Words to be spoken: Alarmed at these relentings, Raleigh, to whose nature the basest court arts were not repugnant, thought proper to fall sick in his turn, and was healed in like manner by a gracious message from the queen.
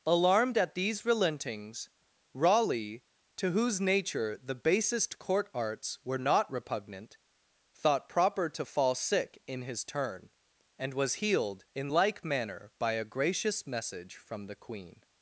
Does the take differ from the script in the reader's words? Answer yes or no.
no